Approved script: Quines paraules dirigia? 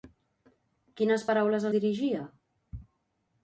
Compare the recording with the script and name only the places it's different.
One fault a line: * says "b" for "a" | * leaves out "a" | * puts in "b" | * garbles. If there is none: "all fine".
all fine